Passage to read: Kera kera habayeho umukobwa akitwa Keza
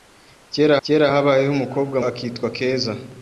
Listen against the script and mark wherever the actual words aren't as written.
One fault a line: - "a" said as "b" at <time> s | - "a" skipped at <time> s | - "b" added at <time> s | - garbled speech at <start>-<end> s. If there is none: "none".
none